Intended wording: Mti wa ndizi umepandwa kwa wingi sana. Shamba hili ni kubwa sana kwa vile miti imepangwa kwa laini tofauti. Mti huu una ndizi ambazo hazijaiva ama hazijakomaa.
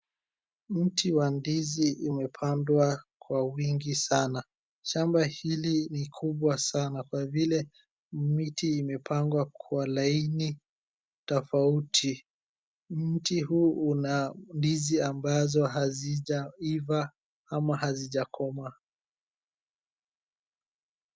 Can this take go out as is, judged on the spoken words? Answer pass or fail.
pass